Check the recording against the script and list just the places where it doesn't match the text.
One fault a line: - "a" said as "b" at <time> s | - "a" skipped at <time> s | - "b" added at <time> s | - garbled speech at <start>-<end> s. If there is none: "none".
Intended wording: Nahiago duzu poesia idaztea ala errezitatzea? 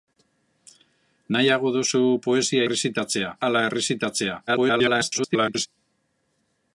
- "idaztea" said as "errezitatzea" at 2.7 s
- garbled speech at 4.5-5.7 s